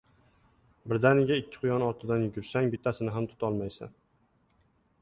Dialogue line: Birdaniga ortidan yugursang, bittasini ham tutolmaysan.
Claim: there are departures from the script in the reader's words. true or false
true